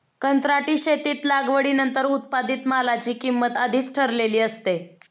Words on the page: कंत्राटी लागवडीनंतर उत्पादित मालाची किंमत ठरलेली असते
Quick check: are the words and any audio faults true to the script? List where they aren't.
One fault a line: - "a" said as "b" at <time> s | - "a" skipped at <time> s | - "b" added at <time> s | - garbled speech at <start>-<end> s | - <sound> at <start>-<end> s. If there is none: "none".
- "शेतीत" added at 0.8 s
- "आधीच" added at 3.6 s